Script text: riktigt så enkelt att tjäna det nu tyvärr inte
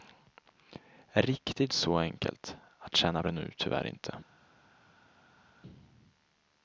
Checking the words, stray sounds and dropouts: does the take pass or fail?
pass